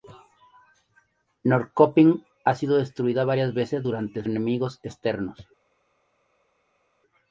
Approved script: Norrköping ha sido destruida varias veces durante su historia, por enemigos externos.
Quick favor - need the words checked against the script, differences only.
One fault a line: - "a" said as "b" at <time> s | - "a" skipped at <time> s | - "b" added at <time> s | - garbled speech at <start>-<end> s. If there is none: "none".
- "su historia por" skipped at 4.2 s